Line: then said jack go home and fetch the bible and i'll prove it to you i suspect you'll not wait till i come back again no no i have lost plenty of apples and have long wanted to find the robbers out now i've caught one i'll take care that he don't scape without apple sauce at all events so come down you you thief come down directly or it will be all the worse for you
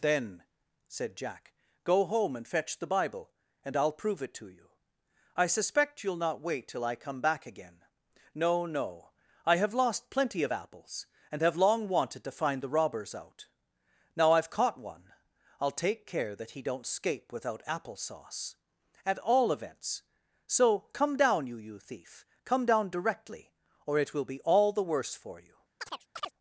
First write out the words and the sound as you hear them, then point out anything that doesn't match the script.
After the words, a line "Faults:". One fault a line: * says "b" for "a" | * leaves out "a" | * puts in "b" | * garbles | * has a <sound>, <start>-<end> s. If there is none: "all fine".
then said jack go home and fetch the bible and i'll prove it to you i suspect you'll not wait till i come back again no no i have lost plenty of apples and have long wanted to find the robbers out now i've caught one i'll take care that he don't scape without apple sauce at all events so come down you you thief come down directly or it will be all the worse for you
Faults:
* has a chirp, 25.8-26.3 s